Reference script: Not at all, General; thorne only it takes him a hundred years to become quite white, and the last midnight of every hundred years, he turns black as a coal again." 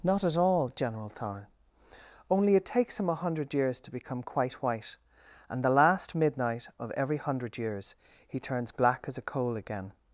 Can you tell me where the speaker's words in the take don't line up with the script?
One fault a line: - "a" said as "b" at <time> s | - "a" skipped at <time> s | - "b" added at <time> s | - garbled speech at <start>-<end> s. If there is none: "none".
none